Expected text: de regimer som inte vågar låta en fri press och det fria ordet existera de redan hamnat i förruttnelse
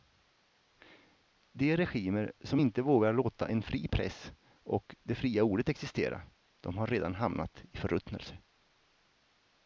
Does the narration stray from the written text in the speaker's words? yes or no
yes